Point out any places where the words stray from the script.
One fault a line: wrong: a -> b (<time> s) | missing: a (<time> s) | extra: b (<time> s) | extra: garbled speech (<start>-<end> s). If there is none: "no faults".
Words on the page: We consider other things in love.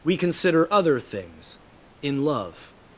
no faults